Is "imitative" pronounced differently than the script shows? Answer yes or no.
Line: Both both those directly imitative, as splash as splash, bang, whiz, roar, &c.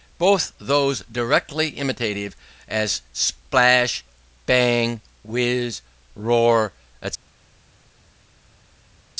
no